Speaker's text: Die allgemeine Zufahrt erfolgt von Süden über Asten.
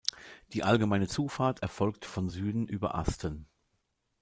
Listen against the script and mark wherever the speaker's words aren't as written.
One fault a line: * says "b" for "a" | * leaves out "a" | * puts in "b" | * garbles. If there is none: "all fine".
all fine